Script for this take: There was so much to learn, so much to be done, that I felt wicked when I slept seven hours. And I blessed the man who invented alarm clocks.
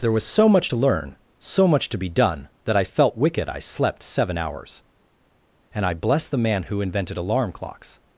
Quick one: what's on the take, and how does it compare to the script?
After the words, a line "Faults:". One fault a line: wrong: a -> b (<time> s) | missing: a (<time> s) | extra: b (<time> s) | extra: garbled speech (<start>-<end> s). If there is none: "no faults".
There was so much to learn, so much to be done, that I felt wicked I slept seven hours. And I blessed the man who invented alarm clocks.
Faults:
missing: when (3.5 s)